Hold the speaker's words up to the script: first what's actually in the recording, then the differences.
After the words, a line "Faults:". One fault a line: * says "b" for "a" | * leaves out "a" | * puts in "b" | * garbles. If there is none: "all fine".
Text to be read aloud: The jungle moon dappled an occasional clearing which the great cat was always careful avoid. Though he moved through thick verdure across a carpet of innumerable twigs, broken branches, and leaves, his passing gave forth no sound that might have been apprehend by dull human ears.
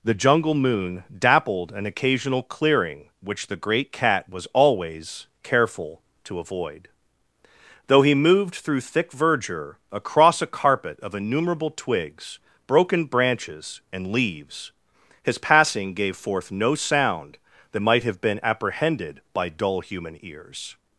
The jungle moon dappled an occasional clearing which the great cat was always careful to avoid. Though he moved through thick verdure across a carpet of innumerable twigs, broken branches, and leaves, his passing gave forth no sound that might have been apprehended by dull human ears.
Faults:
* puts in "to"
* says "apprehended" for "apprehend"